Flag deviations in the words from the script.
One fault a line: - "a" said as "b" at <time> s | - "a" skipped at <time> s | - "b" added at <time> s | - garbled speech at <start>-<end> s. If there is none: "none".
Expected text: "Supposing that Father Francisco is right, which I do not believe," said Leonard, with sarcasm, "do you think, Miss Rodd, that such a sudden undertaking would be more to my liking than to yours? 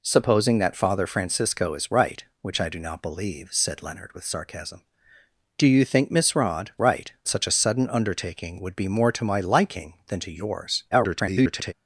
- "that" said as "right" at 6.8 s
- garbled speech at 10.9-11.7 s